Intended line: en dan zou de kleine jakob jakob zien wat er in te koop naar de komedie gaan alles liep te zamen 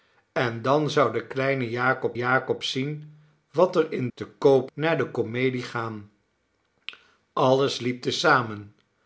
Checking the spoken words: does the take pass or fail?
pass